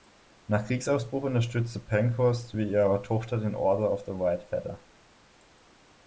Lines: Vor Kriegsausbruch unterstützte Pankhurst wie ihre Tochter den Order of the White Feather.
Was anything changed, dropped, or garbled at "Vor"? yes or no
yes